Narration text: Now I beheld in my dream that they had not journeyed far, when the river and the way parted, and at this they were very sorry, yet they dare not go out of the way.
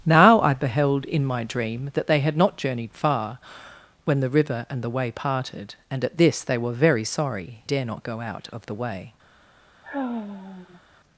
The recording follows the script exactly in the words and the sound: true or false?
false